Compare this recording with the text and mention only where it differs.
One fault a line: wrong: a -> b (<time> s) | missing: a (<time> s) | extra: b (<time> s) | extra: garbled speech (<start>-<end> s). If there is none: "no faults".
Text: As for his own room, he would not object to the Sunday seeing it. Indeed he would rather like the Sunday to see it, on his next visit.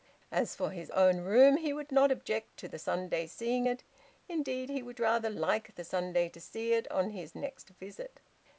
no faults